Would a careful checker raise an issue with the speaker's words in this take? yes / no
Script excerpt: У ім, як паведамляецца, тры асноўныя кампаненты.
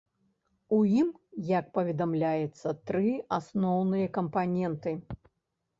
no